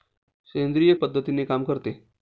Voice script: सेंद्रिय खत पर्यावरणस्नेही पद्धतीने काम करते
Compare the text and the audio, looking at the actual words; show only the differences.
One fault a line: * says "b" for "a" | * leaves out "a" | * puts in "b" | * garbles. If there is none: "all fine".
* leaves out "खत पर्यावरणस्नेही"